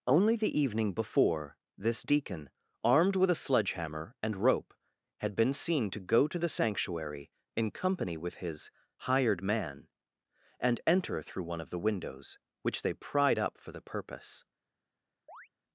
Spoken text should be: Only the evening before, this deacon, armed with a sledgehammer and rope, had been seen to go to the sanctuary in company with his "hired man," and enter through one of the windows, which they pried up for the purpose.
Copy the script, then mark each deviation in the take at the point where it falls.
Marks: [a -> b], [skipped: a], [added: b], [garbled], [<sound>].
Only the evening before, this deacon, armed with a sledgehammer and rope, had been seen to go to the sanctuary in company with his "hired man," and enter through one of the windows, which they pried up for the purpose. [chirp]